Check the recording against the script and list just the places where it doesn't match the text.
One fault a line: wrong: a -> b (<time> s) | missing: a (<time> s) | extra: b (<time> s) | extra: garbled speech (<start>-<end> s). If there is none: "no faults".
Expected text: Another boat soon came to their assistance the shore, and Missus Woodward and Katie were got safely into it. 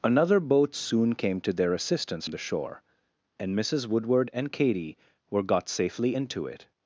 no faults